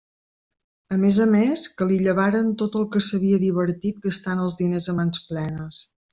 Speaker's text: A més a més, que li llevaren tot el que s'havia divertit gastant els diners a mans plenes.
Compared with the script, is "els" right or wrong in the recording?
right